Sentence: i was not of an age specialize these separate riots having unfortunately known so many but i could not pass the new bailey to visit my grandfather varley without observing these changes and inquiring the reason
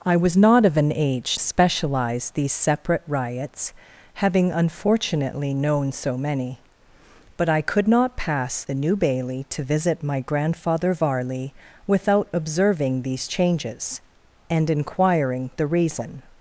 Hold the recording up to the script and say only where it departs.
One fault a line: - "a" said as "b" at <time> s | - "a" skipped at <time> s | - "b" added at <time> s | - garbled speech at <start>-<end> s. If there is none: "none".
none